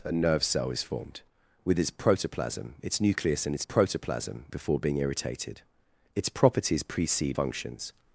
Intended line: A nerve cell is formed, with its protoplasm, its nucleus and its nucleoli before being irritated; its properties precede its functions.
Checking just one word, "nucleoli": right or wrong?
wrong